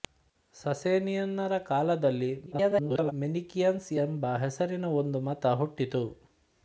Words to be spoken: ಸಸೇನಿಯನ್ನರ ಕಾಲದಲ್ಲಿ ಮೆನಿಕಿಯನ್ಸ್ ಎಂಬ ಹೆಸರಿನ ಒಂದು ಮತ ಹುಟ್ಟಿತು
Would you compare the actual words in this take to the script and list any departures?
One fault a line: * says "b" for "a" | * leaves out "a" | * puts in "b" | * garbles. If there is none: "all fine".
* garbles